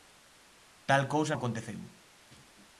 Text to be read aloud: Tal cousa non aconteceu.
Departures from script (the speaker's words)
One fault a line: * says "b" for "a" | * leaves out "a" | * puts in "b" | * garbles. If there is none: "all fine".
* leaves out "non"